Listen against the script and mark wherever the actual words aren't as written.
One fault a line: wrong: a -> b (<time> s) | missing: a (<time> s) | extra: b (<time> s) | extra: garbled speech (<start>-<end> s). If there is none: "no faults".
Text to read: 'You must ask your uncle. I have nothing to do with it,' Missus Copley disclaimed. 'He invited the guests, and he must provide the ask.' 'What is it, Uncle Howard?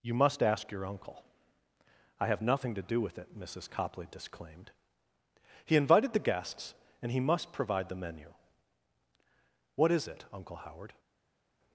wrong: ask -> menu (8.0 s)